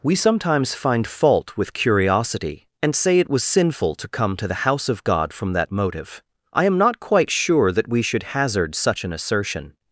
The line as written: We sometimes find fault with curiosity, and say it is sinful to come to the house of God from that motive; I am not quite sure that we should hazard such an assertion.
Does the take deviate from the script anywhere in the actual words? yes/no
yes